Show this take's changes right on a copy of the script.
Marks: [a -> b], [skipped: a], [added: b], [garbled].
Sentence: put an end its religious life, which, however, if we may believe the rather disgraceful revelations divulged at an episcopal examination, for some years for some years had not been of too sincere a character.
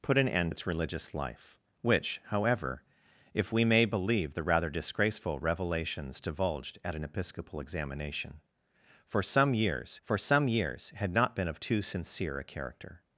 put an end its religious life, which, however, if we may believe the rather disgraceful revelations divulged at an episcopal examination, for some years for some years had not been of too sincere a character.